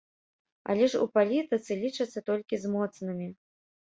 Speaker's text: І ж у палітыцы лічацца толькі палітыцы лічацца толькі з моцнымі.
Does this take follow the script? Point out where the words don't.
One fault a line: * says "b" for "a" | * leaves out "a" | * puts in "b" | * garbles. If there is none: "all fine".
* says "Але" for "І"
* leaves out "палітыцы лічацца толькі"